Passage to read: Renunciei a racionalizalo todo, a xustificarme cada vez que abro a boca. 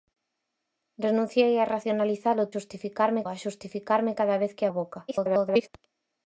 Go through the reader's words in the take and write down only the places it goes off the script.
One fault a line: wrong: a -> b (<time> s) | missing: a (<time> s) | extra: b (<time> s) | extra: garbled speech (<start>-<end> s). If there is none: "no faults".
wrong: todo -> xustificarme (2.5 s)
missing: abro (4.7 s)
extra: garbled speech (5.1-5.7 s)